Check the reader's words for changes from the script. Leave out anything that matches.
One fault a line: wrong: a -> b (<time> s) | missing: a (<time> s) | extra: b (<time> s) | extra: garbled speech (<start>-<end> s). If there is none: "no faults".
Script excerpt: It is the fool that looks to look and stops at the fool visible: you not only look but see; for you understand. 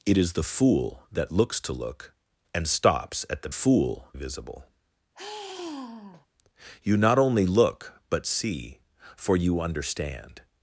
no faults